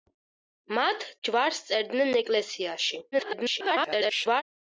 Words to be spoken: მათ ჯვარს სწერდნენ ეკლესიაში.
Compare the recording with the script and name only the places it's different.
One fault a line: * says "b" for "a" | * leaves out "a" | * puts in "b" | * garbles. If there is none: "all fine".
* garbles